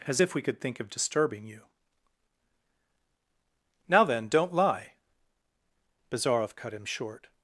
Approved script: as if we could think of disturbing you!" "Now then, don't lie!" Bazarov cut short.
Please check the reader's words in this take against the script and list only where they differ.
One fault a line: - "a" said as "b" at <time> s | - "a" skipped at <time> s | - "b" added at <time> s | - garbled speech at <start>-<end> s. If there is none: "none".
- "him" added at 6.7 s